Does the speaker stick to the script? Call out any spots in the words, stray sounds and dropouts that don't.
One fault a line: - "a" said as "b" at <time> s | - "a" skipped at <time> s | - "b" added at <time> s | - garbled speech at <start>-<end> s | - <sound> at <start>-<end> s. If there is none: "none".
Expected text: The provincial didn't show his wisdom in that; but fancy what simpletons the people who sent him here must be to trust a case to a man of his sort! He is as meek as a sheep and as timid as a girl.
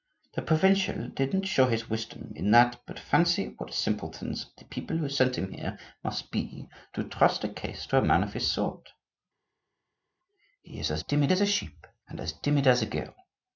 - "meek" said as "timid" at 11.0 s